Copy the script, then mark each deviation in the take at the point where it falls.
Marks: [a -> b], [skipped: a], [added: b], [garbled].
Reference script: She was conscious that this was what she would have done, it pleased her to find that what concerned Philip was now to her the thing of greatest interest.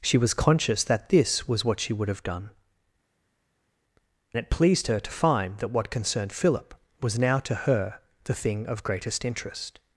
She was conscious that this was what she would have done, it pleased her to find that what concerned Philip was now to her the thing of greatest interest.